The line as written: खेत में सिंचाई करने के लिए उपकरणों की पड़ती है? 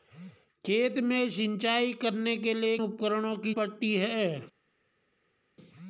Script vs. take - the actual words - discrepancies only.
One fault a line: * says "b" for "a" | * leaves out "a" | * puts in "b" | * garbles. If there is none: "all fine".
all fine